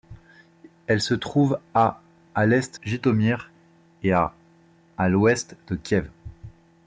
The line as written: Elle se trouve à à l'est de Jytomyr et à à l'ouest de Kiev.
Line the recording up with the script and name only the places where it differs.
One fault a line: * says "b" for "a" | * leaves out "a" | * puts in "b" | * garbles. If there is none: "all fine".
* leaves out "de"